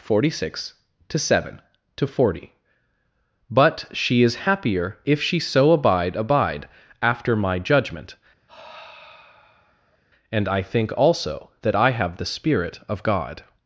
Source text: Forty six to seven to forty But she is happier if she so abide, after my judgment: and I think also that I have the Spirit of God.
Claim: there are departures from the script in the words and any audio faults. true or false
true